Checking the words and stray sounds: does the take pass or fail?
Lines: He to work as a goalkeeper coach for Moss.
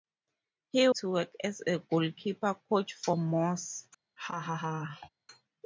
fail